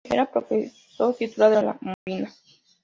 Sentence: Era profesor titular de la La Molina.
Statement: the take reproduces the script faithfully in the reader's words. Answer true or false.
true